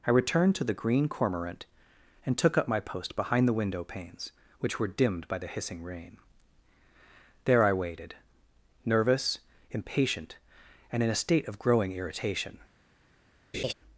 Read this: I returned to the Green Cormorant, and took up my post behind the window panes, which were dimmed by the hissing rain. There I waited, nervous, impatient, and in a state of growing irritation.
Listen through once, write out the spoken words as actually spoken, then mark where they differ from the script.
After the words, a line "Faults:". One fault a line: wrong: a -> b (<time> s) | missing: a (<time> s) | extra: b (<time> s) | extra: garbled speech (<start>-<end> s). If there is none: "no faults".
I returned to the Green Cormorant, and took up my post behind the window panes, which were dimmed by the hissing rain. There I waited, nervous, impatient, and in a state of growing irritation.
Faults:
no faults